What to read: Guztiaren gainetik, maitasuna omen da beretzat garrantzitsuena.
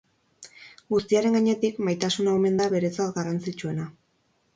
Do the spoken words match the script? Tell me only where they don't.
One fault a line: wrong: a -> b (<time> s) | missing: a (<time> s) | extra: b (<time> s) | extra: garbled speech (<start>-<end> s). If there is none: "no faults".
no faults